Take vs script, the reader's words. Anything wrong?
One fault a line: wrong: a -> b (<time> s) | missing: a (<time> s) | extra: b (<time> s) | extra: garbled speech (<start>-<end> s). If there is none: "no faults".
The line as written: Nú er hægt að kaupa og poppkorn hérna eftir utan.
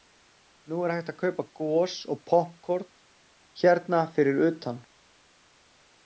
extra: gos (1.6 s)
wrong: eftir -> fyrir (4.2 s)